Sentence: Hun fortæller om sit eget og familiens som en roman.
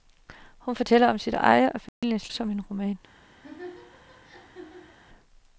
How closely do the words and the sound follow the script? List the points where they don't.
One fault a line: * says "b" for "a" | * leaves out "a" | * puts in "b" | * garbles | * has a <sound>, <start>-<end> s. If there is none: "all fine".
* has a dropout, 1.9-2.0 s
* has a laugh, 3.4-5.0 s